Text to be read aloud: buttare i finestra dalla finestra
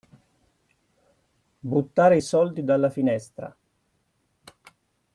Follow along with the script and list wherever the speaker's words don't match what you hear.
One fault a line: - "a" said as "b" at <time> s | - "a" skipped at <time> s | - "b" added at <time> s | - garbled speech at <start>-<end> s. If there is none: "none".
- "finestra" said as "soldi" at 2.2 s